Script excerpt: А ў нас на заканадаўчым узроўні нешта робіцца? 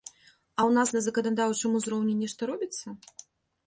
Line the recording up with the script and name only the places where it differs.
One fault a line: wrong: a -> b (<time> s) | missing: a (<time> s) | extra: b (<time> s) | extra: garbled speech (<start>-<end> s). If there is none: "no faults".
no faults